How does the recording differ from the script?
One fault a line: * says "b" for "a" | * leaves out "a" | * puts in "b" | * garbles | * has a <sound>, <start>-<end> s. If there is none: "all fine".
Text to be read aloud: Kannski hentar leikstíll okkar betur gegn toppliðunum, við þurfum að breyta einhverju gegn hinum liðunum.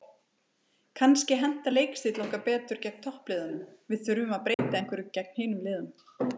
* has a dropout, 4.5-4.6 s